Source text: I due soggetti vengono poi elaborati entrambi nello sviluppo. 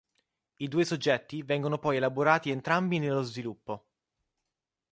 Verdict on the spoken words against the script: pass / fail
pass